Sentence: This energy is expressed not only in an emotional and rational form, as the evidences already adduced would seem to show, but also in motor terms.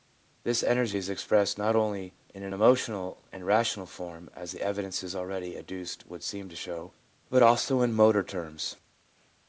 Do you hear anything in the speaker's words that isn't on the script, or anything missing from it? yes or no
no